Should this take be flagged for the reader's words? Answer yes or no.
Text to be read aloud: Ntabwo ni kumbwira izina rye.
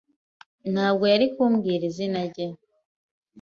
yes